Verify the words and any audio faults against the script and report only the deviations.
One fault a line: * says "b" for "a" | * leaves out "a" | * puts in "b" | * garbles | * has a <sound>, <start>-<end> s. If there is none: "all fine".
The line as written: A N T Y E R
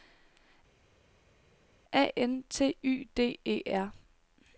* puts in "D"